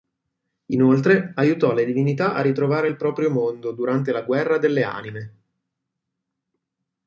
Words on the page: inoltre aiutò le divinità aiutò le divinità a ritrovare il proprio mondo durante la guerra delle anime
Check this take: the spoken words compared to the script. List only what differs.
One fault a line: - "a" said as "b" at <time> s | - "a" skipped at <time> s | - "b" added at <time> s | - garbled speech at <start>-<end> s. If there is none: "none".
- "aiutò le divinità" skipped at 2.3 s